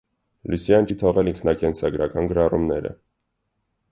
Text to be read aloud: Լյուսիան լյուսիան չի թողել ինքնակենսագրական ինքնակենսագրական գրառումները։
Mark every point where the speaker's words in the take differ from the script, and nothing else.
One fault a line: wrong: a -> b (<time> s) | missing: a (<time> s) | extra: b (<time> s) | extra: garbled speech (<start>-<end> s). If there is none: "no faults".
missing: լյուսիան (0.9 s)
missing: ինքնակենսագրական (2.3 s)